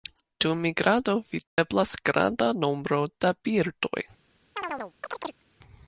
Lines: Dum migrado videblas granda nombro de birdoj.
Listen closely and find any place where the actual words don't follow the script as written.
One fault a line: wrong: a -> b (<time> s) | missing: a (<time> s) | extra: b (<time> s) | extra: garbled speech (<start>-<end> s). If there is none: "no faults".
wrong: de -> da (3.2 s)